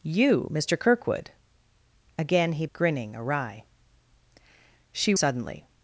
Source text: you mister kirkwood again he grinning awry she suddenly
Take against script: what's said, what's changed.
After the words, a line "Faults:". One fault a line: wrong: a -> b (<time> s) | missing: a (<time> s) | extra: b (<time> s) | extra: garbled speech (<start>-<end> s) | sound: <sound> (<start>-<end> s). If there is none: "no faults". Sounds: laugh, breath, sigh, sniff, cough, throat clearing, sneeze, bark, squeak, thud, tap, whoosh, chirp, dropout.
you mister kirkwood again he grinning awry she suddenly
Faults:
no faults